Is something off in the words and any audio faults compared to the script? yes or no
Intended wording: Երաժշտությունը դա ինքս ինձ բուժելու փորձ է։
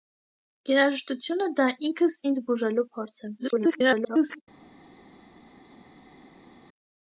yes